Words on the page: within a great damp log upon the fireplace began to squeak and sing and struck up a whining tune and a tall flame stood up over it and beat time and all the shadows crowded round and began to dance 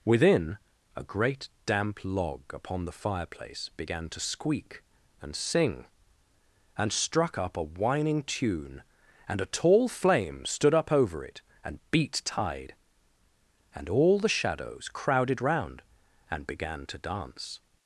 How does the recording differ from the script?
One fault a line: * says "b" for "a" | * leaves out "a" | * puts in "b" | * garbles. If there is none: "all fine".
* says "tide" for "time"